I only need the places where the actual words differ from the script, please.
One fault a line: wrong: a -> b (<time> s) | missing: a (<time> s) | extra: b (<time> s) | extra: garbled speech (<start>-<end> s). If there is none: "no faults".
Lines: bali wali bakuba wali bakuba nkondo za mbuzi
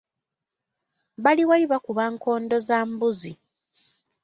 missing: wali bakuba (2.0 s)